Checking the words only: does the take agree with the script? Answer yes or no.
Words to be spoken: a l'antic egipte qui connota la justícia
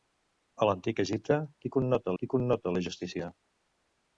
no